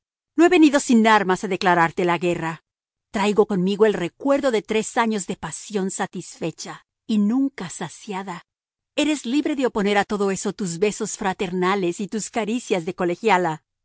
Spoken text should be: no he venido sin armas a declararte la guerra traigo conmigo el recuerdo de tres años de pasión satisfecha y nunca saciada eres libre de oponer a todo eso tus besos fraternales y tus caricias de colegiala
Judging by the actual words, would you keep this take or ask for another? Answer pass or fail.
pass